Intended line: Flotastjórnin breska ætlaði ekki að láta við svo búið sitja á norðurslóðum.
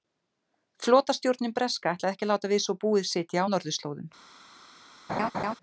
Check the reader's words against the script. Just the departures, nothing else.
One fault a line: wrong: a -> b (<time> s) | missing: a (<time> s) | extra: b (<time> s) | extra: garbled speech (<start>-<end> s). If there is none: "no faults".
no faults